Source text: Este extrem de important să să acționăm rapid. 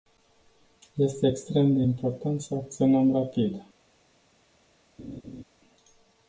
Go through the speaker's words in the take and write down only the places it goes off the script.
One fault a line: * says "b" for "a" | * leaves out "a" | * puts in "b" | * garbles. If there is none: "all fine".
* leaves out "să"